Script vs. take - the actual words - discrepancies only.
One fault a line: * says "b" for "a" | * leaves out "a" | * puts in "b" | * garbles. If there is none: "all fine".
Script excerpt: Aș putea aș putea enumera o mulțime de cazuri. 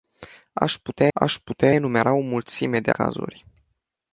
all fine